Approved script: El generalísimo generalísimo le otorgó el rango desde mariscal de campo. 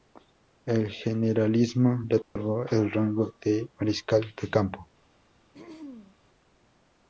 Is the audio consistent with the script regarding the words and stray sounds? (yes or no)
no